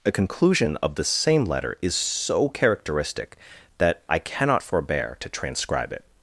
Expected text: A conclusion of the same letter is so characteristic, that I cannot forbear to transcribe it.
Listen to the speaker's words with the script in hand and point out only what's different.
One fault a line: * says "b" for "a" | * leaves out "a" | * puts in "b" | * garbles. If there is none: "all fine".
all fine